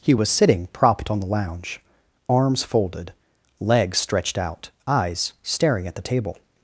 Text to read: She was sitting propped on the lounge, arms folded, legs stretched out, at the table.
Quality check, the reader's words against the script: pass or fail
fail